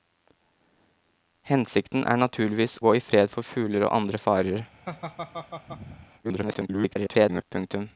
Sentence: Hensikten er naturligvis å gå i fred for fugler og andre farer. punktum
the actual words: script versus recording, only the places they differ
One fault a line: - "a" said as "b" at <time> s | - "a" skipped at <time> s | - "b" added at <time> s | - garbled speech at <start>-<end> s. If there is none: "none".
- "å" skipped at 2.8 s
- garbled speech at 6.2-7.4 s